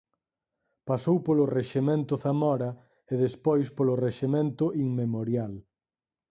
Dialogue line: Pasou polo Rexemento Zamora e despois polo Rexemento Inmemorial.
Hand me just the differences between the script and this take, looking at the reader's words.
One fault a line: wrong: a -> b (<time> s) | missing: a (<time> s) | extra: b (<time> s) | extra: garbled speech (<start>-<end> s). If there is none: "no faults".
no faults